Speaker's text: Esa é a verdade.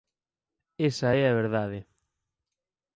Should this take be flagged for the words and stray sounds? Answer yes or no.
no